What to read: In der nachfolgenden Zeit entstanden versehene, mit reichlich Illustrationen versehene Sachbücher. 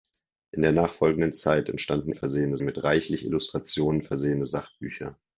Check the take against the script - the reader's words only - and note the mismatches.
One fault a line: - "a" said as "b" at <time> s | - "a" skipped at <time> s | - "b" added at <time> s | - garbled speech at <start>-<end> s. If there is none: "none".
none